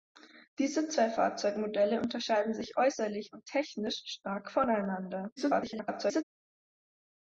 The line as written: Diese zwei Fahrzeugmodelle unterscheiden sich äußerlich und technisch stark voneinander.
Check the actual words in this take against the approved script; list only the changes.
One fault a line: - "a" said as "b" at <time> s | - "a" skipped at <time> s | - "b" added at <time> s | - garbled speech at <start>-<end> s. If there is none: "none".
- garbled speech at 5.4-6.2 s